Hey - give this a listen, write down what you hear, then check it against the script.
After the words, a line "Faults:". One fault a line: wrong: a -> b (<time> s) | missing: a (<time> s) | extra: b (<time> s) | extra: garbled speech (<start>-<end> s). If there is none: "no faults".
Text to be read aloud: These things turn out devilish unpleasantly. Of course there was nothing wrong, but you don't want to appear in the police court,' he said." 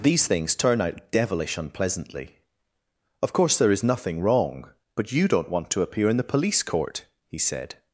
These things turn out devilish unpleasantly. Of course there is nothing wrong, but you don't want to appear in the police court,' he said."
Faults:
wrong: was -> is (3.7 s)